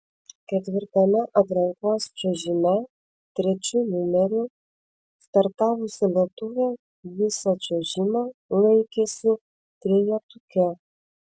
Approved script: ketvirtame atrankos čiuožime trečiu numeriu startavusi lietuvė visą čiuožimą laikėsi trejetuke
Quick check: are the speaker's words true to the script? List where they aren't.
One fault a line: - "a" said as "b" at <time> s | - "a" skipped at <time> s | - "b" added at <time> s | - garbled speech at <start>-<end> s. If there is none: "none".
none